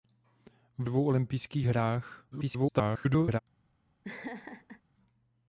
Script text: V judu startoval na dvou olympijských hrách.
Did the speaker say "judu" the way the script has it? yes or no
no